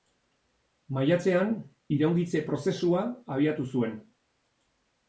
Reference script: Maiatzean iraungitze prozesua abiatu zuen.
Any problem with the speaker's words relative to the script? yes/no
no